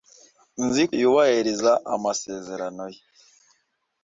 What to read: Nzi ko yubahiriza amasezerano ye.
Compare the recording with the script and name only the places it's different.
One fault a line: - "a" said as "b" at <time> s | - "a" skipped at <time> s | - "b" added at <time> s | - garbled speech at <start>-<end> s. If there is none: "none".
- "ko" skipped at 0.8 s